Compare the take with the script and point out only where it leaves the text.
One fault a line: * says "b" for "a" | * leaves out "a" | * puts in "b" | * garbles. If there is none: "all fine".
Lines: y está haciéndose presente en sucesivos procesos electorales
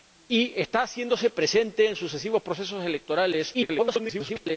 * garbles